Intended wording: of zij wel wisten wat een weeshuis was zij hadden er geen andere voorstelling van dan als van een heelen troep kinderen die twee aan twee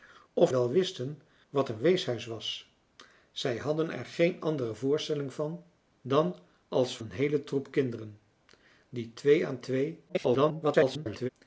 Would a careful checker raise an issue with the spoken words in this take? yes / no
yes